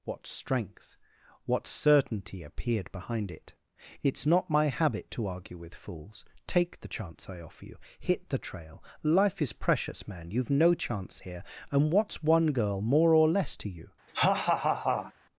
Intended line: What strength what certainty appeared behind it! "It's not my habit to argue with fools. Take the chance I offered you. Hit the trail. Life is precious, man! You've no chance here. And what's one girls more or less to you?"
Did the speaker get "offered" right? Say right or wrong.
wrong